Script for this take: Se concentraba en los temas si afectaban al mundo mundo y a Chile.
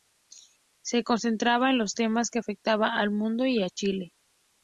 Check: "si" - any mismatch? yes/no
yes